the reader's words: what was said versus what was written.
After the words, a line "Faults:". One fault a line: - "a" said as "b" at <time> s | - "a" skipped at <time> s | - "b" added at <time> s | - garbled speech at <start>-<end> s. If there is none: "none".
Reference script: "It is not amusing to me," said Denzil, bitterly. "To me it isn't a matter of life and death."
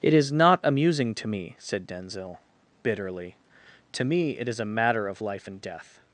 "It is not amusing to me," said Denzil, bitterly. "To me it is a matter of life and death."
Faults:
- "isn't" said as "is" at 4.5 s